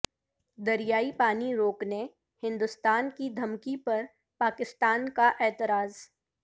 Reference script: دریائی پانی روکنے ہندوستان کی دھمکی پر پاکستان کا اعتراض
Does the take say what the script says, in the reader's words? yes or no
yes